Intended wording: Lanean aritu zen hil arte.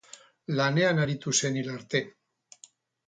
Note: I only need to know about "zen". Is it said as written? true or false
true